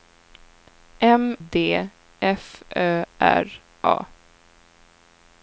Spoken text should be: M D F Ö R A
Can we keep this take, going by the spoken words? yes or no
yes